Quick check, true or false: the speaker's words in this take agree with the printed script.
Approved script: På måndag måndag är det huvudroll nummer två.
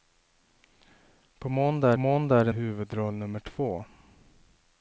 true